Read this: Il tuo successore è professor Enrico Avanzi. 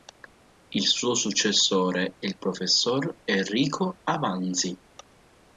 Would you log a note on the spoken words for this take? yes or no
yes